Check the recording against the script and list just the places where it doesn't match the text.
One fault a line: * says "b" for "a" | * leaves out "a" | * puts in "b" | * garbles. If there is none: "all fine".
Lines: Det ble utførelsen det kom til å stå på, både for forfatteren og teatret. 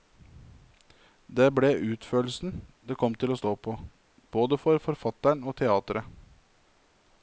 all fine